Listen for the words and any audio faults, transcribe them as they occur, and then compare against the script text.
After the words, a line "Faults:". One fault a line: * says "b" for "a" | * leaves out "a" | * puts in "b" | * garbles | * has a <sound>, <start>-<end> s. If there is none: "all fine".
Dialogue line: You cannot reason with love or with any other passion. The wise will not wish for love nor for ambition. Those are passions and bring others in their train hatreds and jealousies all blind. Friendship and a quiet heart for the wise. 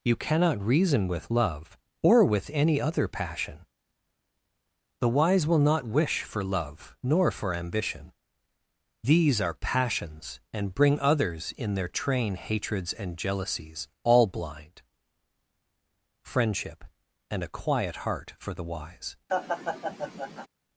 You cannot reason with love or with any other passion. The wise will not wish for love nor for ambition. These are passions and bring others in their train hatreds and jealousies all blind. Friendship and a quiet heart for the wise.
Faults:
* says "These" for "Those"
* has a laugh, 19.3-20.5 s